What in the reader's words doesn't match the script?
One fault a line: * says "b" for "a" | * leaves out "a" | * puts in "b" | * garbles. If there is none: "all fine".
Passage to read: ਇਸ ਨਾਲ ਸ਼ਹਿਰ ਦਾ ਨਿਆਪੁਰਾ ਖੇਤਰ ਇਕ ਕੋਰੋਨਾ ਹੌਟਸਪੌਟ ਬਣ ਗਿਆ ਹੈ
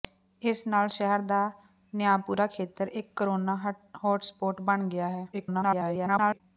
* garbles